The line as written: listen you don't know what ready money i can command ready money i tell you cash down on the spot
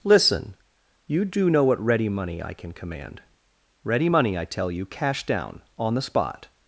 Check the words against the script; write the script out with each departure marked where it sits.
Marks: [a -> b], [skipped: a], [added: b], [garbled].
listen you [don't -> do] know what ready money i can command ready money i tell you cash down on the spot